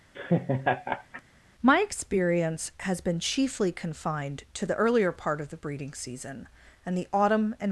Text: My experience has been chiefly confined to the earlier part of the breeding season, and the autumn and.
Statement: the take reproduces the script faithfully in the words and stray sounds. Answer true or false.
false